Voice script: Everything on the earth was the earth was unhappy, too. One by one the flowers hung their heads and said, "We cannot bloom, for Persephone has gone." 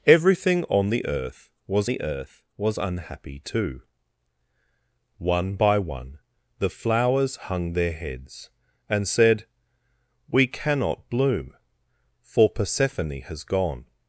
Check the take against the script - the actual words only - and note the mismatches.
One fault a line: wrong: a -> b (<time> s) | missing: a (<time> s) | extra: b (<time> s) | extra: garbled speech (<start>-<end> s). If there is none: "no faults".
no faults